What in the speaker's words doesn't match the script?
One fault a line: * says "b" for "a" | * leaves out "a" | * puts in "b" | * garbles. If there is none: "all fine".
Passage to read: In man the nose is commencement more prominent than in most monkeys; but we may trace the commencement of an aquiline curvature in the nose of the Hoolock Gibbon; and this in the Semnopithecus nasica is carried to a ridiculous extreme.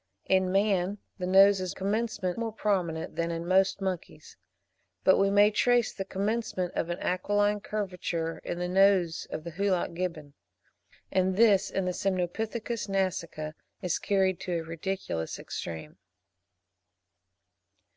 all fine